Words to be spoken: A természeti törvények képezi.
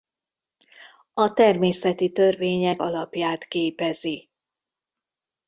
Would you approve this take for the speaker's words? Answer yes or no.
no